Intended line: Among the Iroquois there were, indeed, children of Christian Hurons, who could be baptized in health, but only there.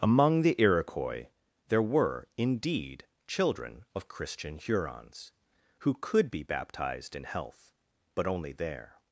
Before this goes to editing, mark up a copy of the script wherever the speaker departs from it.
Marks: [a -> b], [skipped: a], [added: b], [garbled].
Among the Iroquois there were, indeed, children of Christian Hurons, who could be baptized in health, but only there.